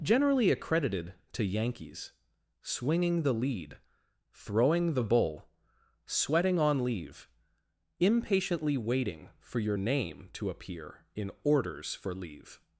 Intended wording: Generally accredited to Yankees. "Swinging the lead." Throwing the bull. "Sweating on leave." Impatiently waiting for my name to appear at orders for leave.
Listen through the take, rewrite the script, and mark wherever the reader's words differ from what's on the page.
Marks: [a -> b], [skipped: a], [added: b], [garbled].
Generally accredited to Yankees. "Swinging the lead." Throwing the bull. "Sweating on leave." Impatiently waiting for [my -> your] name to appear [at -> in] orders for leave.